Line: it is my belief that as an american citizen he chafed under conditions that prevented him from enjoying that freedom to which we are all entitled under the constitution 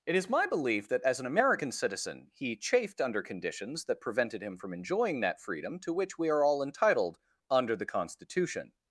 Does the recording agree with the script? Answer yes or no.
yes